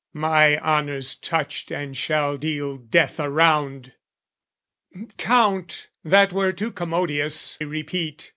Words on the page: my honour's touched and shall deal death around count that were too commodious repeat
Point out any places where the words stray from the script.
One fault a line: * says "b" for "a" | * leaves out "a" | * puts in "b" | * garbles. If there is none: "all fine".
all fine